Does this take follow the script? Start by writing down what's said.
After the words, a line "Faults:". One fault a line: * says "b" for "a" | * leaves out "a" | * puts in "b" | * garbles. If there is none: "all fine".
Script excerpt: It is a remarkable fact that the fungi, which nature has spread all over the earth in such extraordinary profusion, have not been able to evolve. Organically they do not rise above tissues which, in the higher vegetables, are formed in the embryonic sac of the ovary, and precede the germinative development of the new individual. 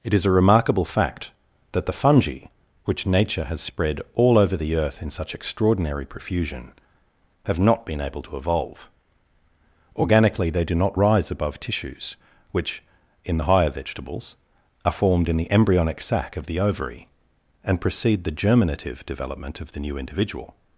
It is a remarkable fact that the fungi, which nature has spread all over the earth in such extraordinary profusion, have not been able to evolve. Organically they do not rise above tissues which, in the higher vegetables, are formed in the embryonic sac of the ovary, and precede the germinative development of the new individual.
Faults:
all fine